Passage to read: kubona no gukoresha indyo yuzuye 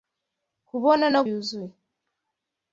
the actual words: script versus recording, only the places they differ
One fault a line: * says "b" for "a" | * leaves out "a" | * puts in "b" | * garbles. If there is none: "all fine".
* leaves out "gukoresha indyo"